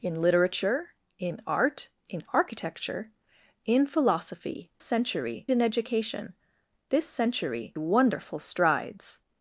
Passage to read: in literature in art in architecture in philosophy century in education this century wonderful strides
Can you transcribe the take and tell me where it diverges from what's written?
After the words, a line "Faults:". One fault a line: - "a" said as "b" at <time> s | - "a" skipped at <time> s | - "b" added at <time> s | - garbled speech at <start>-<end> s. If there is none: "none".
in literature in art in architecture in philosophy century in education this century wonderful strides
Faults:
none